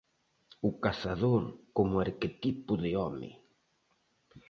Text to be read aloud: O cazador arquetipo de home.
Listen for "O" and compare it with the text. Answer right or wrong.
right